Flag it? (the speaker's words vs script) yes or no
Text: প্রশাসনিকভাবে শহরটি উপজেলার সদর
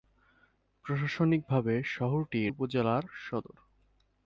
no